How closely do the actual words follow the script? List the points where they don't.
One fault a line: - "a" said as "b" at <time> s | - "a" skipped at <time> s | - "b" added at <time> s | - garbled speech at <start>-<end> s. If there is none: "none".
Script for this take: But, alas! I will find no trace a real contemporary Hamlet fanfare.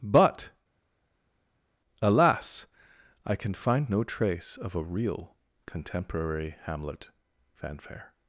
- "will" said as "can" at 3.3 s
- "of" added at 4.6 s